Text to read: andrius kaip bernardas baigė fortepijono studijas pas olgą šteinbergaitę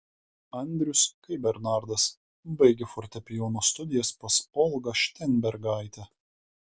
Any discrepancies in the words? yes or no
no